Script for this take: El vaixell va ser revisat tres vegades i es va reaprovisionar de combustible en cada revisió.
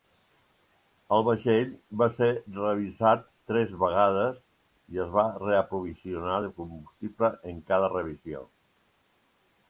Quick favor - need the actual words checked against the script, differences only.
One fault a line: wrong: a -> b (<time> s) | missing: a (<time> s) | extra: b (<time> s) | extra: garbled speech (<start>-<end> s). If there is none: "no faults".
no faults